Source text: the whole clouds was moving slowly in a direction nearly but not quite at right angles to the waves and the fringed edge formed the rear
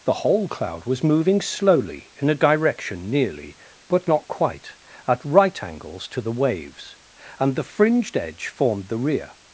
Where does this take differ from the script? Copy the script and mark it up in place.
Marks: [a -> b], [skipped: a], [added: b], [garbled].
the whole [clouds -> cloud] was moving slowly in a direction nearly but not quite at right angles to the waves and the fringed edge formed the rear